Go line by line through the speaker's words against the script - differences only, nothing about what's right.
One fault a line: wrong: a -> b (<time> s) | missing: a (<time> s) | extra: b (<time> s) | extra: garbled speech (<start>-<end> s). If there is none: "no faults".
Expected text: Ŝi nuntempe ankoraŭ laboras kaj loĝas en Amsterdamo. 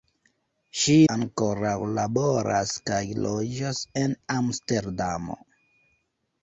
missing: nuntempe (0.9 s)